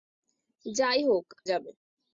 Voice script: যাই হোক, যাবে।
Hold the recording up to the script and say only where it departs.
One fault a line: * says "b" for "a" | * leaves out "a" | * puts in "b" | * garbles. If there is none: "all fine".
all fine